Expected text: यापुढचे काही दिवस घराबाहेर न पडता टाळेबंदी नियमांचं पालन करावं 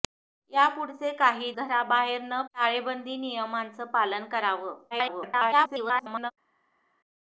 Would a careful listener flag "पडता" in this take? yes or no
yes